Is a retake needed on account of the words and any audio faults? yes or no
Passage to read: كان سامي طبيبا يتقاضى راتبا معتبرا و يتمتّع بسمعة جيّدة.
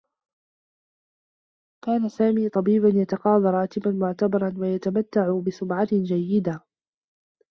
no